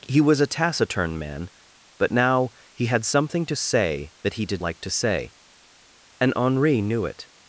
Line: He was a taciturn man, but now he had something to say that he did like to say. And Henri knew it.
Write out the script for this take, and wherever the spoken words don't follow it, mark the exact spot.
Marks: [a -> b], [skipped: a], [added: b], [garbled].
He was a taciturn man, but now he had something to say that he did like to say. And Henri knew it.